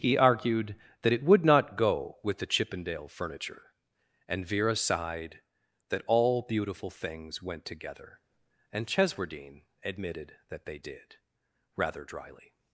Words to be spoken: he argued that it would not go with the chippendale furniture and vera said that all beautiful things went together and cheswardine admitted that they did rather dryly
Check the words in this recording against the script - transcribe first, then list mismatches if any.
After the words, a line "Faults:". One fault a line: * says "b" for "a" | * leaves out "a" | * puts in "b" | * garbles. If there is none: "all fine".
he argued that it would not go with the chippendale furniture and vera sighed that all beautiful things went together and cheswardine admitted that they did rather dryly
Faults:
* says "sighed" for "said"